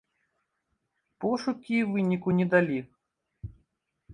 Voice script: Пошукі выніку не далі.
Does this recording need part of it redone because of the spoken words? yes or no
no